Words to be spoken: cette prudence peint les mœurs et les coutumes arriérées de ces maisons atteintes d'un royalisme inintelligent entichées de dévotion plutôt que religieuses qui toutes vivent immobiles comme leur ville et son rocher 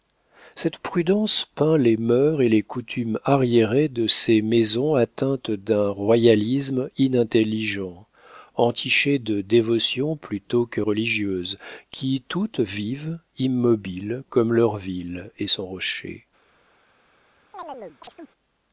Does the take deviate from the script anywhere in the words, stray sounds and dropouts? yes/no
yes